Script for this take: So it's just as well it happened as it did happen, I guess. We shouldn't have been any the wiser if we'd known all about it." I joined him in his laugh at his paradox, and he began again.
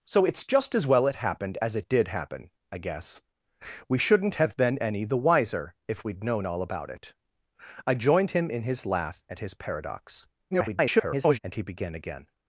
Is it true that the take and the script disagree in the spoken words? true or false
true